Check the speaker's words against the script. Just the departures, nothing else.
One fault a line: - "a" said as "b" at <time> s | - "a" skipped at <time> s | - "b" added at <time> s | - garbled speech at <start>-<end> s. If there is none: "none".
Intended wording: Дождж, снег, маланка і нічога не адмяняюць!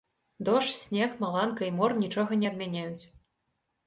- "мор" added at 1.8 s